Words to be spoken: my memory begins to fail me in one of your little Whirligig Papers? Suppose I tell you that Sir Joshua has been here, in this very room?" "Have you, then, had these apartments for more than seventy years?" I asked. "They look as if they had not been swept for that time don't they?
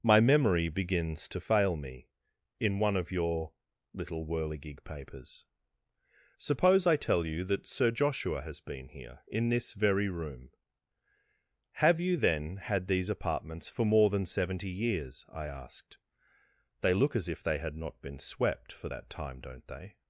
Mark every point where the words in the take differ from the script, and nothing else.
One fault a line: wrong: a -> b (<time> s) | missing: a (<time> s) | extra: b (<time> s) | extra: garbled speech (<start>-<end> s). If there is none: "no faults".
no faults